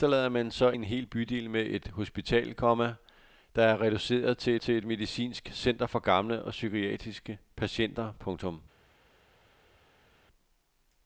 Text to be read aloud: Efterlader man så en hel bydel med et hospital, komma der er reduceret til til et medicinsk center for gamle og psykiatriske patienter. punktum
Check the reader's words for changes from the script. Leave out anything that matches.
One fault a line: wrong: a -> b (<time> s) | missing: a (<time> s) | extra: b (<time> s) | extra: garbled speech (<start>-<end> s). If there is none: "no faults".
no faults